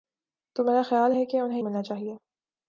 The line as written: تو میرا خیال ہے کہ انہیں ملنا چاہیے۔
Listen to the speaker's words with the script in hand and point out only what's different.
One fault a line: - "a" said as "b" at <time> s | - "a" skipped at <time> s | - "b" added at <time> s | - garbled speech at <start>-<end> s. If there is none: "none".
none